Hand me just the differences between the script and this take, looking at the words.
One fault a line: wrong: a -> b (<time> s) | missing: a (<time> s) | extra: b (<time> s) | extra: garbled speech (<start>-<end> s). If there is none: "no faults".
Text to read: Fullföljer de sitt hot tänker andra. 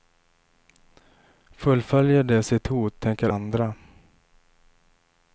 no faults